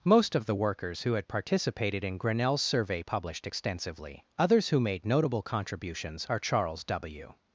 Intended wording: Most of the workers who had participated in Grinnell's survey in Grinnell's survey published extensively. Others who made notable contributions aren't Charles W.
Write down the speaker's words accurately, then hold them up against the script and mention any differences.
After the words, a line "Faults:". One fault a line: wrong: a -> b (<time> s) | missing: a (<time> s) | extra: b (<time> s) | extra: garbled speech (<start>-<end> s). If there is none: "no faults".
Most of the workers who had participated in Grinnell's survey published extensively. Others who made notable contributions are Charles W.
Faults:
missing: in Grinnell's survey (3.0 s)
wrong: aren't -> are (6.3 s)